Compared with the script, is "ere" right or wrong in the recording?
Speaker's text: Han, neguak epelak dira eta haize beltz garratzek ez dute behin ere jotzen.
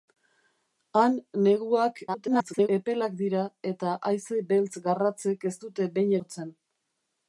wrong